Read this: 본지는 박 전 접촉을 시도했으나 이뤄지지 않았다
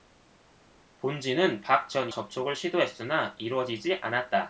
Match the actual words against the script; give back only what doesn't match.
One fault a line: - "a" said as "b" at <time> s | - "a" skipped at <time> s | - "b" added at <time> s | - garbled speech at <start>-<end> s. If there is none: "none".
none